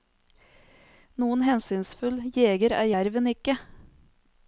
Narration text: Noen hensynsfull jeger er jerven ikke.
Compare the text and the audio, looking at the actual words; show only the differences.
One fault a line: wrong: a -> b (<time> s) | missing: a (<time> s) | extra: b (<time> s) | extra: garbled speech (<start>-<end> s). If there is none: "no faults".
no faults